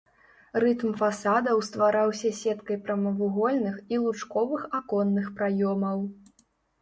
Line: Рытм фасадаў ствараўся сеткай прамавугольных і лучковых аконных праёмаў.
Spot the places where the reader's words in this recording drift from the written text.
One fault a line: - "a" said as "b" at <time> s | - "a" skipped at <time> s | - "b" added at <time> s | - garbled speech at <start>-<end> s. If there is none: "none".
none